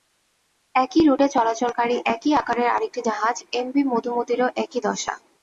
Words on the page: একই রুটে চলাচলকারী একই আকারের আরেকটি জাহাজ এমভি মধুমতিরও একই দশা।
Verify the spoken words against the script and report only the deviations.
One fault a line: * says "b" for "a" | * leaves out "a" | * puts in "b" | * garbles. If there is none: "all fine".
all fine